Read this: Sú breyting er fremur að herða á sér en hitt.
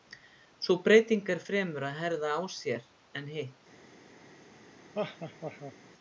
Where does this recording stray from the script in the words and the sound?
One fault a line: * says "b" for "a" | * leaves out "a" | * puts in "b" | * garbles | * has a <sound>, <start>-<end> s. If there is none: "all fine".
* has a laugh, 4.9-5.7 s